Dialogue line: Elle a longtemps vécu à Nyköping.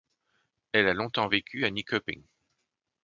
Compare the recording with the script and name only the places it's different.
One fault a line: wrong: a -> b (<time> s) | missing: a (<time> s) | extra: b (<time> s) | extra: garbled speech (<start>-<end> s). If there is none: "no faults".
no faults